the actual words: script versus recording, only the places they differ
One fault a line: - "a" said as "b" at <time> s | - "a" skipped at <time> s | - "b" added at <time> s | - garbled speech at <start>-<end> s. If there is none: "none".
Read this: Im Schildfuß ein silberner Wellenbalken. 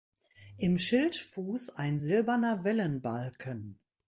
none